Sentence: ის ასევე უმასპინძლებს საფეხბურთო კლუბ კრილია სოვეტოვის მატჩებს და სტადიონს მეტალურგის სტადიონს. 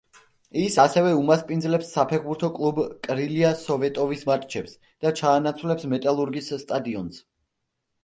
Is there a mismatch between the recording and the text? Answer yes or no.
yes